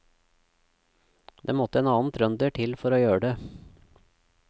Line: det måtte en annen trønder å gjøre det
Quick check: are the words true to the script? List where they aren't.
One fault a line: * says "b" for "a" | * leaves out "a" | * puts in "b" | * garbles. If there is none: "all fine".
* puts in "til for"